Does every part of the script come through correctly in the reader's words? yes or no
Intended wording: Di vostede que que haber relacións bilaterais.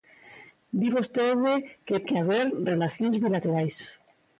yes